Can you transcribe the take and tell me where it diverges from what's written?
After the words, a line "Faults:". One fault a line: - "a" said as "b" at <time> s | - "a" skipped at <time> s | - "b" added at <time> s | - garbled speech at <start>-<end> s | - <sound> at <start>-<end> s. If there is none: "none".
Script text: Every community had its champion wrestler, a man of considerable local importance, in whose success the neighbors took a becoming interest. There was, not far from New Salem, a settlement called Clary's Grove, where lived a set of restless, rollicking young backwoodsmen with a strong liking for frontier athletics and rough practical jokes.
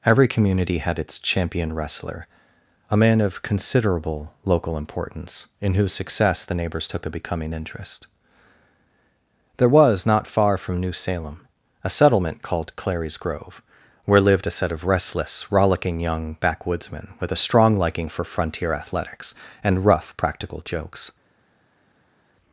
Every community had its champion wrestler, a man of considerable local importance, in whose success the neighbors took a becoming interest. There was, not far from New Salem, a settlement called Clary's Grove, where lived a set of restless, rollicking young backwoodsmen with a strong liking for frontier athletics and rough practical jokes.
Faults:
none